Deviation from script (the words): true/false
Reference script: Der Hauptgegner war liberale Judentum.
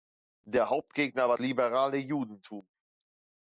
false